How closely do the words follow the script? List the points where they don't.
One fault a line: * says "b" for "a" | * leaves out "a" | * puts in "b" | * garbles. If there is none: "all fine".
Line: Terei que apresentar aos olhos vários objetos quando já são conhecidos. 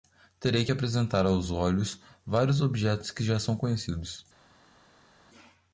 * says "que" for "quando"